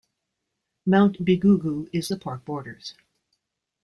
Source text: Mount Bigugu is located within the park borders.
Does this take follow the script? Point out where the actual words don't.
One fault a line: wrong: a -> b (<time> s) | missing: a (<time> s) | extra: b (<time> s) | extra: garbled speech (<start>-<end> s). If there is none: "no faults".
missing: located within (2.1 s)